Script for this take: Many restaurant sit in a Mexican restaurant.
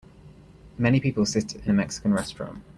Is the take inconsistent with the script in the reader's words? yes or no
yes